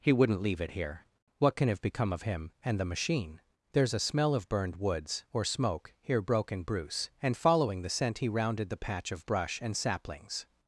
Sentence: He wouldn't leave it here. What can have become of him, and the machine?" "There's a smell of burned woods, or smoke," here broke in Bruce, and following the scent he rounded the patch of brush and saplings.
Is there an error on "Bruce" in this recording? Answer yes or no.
no